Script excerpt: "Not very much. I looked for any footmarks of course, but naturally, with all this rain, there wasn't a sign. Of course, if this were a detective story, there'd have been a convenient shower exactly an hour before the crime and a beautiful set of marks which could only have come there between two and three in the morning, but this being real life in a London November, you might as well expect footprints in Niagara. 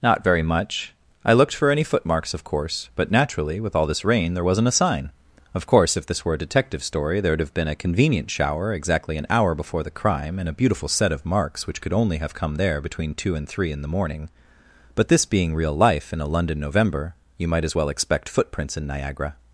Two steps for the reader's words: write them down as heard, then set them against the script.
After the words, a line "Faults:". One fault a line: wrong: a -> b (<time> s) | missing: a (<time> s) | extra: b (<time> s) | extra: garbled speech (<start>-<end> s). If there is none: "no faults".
"Not very much. I looked for any footmarks of course, but naturally, with all this rain, there wasn't a sign. Of course, if this were a detective story, there'd have been a convenient shower exactly an hour before the crime and a beautiful set of marks which could only have come there between two and three in the morning, but this being real life in a London November, you might as well expect footprints in Niagara.
Faults:
no faults